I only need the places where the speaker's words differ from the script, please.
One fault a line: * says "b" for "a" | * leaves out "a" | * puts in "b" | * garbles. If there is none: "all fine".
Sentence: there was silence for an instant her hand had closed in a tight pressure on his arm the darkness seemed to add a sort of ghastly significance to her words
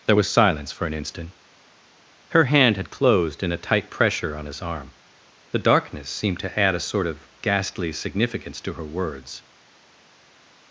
all fine